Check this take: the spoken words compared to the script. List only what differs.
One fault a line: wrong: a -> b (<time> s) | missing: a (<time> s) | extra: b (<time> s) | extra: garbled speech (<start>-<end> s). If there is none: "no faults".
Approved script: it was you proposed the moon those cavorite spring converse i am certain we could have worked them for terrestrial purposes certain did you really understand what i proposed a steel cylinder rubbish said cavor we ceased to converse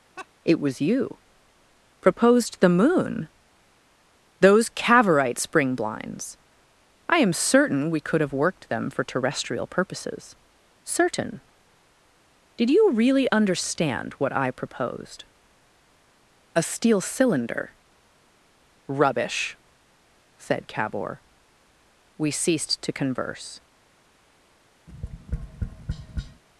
wrong: converse -> blinds (5.8 s)